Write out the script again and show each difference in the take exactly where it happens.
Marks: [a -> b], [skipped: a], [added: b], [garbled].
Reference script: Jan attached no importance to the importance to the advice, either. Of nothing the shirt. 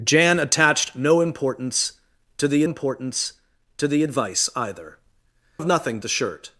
Jan attached no importance to the importance to the advice, either. Of nothing the shirt.